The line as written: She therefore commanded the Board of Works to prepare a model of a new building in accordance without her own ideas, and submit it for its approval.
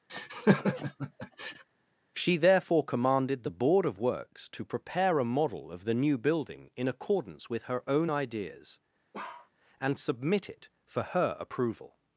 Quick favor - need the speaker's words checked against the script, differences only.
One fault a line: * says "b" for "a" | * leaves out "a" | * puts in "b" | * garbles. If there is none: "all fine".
* says "the" for "a"
* says "with" for "without"
* says "her" for "its"